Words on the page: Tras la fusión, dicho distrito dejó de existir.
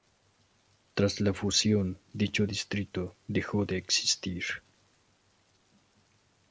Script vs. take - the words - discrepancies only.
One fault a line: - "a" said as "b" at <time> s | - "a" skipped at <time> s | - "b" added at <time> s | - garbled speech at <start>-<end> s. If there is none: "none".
none